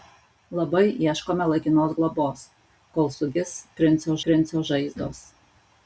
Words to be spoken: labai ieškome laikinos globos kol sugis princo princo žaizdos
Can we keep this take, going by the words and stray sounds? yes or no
yes